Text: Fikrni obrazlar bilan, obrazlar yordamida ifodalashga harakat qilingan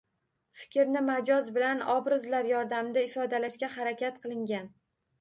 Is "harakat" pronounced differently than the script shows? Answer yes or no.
no